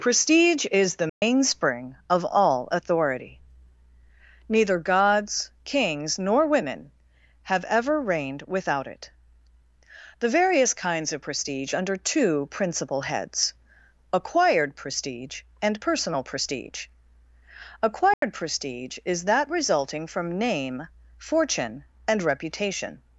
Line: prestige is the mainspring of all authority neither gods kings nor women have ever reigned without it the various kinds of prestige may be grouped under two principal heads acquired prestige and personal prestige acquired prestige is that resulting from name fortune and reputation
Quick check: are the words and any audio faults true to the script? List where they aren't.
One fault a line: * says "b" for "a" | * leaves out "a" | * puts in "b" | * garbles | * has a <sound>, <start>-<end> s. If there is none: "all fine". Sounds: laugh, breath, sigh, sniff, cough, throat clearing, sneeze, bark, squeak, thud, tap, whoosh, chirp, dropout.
* has a dropout, 1.1-1.2 s
* leaves out "may be grouped"
* has a dropout, 18.1-18.2 s